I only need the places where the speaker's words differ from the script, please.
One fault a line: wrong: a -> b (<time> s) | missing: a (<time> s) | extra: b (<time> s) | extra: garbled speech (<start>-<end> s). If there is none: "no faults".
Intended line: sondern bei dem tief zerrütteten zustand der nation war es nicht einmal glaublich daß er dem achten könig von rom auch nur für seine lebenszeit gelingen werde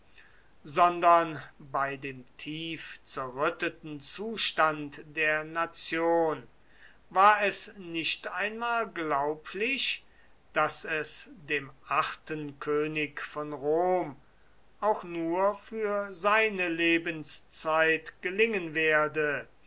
wrong: er -> es (10.8 s)